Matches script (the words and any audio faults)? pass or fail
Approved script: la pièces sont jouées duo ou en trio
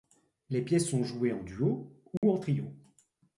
fail